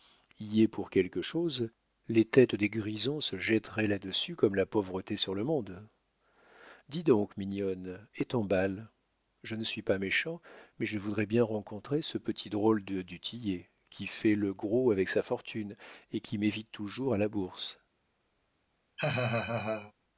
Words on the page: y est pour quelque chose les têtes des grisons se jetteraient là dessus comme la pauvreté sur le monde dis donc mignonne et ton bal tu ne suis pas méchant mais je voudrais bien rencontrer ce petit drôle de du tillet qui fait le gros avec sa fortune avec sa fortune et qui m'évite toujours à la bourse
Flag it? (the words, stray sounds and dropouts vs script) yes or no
yes